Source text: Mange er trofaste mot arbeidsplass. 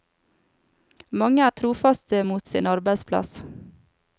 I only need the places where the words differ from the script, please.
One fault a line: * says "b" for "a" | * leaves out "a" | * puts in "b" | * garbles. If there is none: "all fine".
* puts in "sin"